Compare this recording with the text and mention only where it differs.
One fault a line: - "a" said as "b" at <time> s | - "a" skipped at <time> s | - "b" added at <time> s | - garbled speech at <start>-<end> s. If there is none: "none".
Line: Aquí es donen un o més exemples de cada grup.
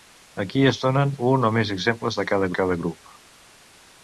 - "cada" added at 2.6 s